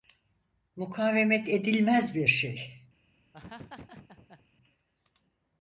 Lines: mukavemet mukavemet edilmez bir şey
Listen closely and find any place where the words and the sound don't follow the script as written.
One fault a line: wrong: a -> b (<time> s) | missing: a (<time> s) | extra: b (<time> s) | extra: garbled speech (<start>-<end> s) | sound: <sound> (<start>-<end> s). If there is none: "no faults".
missing: mukavemet (1.5 s)
sound: laugh (3.3-4.5 s)